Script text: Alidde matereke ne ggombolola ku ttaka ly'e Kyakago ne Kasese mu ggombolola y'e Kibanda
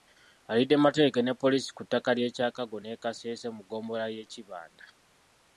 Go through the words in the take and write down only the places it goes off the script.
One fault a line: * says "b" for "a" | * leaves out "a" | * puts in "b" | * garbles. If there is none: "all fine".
* says "poliisi" for "ggombolola"